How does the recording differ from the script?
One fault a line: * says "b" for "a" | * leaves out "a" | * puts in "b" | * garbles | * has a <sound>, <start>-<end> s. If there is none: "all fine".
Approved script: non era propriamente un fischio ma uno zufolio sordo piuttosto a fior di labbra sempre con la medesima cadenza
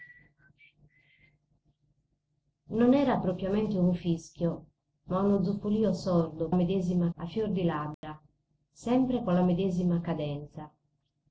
* says "medesima" for "piuttosto"
* has a dropout, 7.9-8.0 s